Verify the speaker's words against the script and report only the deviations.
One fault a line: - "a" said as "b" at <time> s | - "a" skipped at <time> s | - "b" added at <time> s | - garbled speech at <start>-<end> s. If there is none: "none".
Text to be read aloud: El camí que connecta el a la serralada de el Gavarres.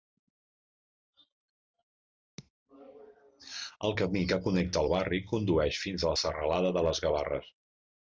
- "barri condueix fins" added at 4.9 s
- "el" said as "les" at 6.9 s